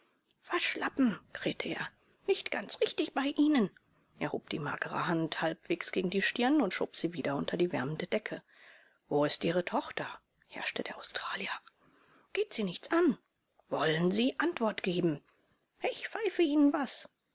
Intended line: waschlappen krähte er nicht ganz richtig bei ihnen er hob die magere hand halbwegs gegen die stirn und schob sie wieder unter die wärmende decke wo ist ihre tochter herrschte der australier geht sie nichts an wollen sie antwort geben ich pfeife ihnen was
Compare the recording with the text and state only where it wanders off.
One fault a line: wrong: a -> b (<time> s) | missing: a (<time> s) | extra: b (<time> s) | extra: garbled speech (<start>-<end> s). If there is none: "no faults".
no faults